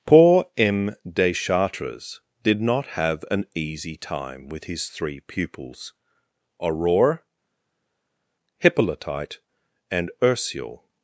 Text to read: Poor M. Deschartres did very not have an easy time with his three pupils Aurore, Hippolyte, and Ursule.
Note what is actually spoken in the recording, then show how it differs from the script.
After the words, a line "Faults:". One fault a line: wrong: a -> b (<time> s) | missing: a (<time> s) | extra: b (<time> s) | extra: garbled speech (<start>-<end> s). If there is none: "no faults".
Poor M. Deschartres did not have an easy time with his three pupils Aurore, Hippolyte, and Ursule.
Faults:
missing: very (2.6 s)